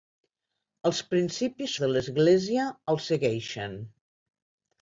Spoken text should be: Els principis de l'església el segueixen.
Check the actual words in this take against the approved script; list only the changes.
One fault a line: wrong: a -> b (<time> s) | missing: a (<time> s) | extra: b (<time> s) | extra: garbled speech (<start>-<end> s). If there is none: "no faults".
no faults